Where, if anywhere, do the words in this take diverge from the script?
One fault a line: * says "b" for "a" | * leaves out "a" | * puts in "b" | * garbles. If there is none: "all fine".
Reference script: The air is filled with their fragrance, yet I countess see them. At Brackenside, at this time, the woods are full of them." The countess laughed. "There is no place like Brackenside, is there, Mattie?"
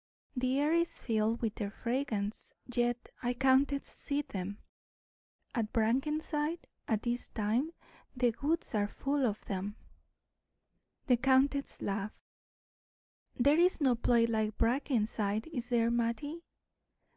all fine